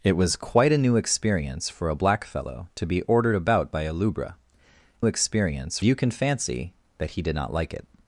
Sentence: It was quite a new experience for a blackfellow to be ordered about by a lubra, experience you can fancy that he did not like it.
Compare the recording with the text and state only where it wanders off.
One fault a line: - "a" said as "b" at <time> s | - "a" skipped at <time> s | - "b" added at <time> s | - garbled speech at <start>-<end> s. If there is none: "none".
none